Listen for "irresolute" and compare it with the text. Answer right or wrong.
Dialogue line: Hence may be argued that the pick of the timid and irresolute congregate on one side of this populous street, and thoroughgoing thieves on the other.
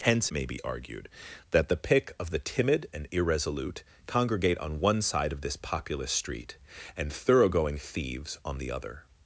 right